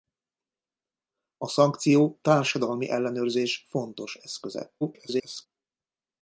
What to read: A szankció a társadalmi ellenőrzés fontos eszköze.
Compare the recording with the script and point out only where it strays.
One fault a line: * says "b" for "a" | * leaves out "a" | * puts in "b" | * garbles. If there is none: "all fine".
* leaves out "a"
* garbles